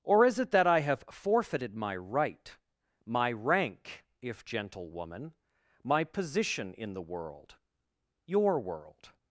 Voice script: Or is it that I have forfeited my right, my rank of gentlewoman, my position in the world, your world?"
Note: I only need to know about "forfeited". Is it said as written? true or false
true